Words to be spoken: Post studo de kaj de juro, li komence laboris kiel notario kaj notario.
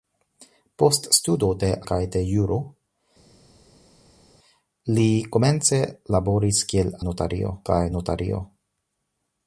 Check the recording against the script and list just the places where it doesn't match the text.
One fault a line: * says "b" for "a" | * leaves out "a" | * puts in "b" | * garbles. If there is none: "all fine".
all fine